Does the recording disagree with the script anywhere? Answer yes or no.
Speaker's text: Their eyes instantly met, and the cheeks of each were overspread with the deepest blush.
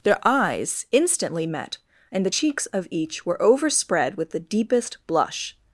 no